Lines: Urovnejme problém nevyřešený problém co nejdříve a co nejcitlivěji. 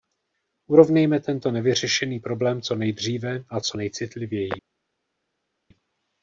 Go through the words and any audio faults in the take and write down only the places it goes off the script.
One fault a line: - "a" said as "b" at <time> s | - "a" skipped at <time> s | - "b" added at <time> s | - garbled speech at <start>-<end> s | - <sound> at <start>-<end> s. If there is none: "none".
- "problém" said as "tento" at 1.2 s